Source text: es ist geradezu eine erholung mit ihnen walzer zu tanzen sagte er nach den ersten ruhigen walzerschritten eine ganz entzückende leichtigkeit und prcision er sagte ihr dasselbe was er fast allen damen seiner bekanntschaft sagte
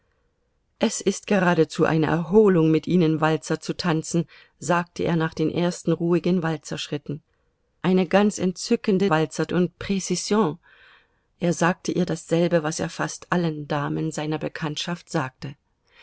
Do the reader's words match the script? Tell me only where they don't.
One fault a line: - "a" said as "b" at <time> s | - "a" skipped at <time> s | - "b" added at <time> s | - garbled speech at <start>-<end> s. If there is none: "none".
- "leichtigkeit" said as "walzer" at 9.1 s